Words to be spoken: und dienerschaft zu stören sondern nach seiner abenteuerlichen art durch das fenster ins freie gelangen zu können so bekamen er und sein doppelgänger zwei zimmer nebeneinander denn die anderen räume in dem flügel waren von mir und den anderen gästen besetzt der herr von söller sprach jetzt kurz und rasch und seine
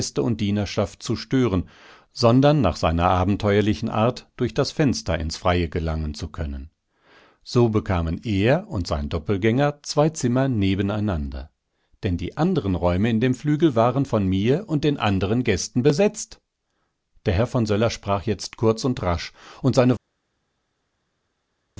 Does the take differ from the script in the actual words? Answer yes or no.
no